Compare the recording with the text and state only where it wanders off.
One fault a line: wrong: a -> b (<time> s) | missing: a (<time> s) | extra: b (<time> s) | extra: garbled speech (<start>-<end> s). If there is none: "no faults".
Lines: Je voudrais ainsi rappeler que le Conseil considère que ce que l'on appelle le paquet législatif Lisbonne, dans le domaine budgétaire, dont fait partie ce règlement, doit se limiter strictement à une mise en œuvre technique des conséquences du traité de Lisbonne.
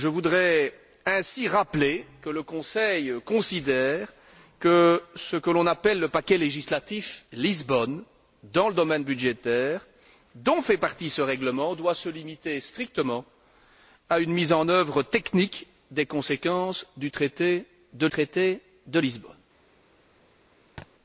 extra: traité de (18.1 s)